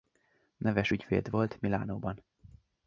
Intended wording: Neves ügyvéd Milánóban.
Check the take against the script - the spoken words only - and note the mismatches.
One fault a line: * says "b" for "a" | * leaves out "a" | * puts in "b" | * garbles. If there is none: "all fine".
* puts in "volt"